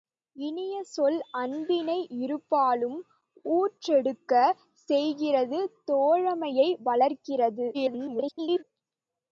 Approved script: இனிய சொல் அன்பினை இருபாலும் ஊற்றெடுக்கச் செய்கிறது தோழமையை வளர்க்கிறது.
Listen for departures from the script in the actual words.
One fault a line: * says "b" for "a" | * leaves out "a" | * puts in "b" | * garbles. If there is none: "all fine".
* garbles